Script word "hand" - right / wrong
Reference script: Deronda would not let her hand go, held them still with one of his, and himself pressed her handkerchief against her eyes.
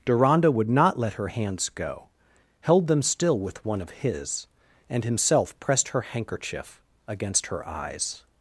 wrong